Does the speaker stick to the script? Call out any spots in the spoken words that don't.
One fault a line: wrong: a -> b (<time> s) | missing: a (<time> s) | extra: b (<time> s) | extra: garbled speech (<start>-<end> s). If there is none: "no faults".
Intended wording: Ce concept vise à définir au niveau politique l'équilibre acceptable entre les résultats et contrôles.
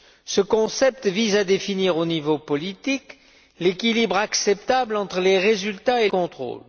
no faults